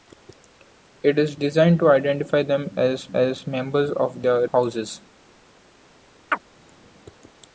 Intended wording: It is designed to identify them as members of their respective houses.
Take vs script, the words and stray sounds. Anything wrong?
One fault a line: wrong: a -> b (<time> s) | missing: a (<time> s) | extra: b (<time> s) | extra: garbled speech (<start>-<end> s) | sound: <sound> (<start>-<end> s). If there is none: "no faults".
extra: as (3.1 s)
missing: respective (4.5 s)
sound: chirp (6.3-6.4 s)